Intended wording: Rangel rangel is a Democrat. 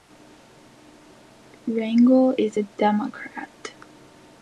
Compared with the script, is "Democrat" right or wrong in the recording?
right